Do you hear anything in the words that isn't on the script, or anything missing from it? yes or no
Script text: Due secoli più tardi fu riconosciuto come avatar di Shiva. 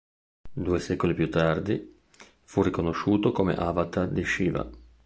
no